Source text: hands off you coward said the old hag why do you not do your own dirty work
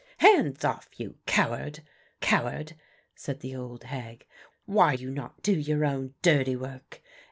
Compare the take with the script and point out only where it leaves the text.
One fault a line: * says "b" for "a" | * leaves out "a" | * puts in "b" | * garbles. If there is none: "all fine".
* puts in "coward"
* leaves out "do"